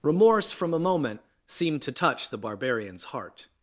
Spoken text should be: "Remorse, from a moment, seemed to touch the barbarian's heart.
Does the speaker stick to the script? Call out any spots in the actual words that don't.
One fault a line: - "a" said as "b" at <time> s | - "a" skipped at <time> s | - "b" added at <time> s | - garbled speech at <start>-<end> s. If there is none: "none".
none